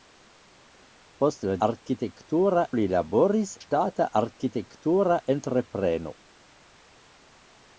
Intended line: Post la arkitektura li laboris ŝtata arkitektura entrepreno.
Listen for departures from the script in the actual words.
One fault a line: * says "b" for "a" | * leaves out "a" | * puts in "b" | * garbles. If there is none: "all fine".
all fine